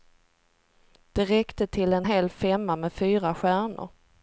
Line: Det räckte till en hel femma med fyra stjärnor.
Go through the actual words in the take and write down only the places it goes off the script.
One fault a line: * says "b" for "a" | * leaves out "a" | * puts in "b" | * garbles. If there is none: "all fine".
all fine